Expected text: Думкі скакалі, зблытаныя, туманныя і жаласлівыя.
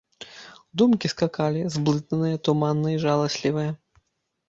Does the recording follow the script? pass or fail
pass